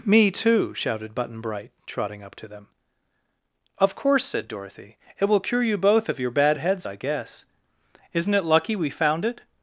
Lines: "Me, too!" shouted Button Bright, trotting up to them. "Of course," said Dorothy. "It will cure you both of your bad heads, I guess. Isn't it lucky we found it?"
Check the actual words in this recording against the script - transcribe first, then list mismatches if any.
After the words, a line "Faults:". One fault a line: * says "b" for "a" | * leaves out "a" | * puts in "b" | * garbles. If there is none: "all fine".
"Me, too!" shouted Button Bright, trotting up to them. "Of course," said Dorothy. "It will cure you both of your bad heads, I guess. Isn't it lucky we found it?"
Faults:
all fine